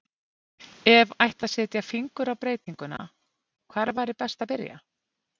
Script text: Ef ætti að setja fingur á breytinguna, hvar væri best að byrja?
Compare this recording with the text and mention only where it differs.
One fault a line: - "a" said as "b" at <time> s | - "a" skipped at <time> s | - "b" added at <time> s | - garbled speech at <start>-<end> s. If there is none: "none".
none